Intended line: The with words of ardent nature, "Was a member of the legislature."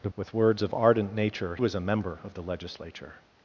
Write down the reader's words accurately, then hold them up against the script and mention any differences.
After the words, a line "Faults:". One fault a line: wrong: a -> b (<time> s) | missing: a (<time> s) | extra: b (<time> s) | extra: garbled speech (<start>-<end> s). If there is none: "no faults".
The with words of ardent nature, "Was a member of the legislature."
Faults:
no faults